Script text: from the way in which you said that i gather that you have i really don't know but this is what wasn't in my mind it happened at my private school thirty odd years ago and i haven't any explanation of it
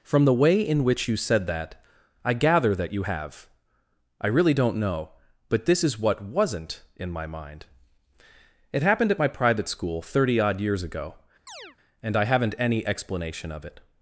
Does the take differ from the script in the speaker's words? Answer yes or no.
no